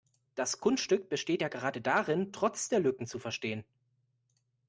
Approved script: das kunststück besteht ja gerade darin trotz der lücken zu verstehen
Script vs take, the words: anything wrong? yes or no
no